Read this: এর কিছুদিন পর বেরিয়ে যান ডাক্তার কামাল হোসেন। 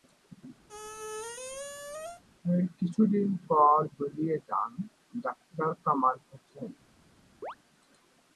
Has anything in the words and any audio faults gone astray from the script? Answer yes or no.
yes